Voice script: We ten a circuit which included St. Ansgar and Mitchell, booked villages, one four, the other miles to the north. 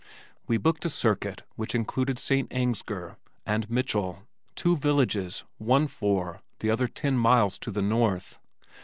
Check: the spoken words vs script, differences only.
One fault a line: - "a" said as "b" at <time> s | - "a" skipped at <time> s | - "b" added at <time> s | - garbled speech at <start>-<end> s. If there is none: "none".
- "ten" said as "booked" at 0.6 s
- "booked" said as "two" at 4.5 s
- "ten" added at 6.9 s